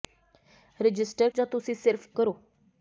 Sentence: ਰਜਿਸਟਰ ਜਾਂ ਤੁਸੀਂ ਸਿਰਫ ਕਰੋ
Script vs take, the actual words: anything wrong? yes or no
no